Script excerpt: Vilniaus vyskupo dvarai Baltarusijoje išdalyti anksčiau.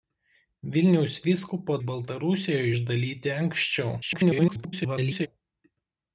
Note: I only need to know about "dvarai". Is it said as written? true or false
false